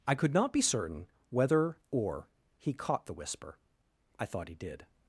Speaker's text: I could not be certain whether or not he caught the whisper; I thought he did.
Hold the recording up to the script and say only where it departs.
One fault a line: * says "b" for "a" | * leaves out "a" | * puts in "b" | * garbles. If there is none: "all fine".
* leaves out "not"